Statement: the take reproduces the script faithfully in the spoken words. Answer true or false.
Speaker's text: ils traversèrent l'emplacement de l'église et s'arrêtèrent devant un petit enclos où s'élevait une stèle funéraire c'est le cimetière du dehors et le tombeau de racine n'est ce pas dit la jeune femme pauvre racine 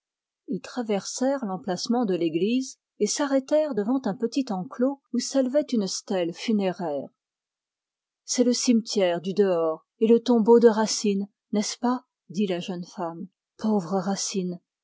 true